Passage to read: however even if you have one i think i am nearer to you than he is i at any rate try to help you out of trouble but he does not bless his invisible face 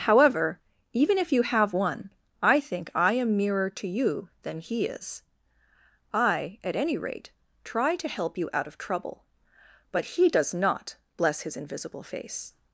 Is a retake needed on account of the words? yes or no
no